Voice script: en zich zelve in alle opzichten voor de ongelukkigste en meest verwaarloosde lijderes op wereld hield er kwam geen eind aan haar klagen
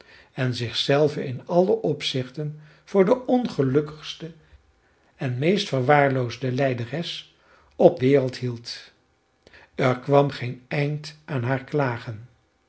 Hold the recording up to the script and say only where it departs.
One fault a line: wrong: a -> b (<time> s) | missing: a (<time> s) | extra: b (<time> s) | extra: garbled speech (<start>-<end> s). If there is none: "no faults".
no faults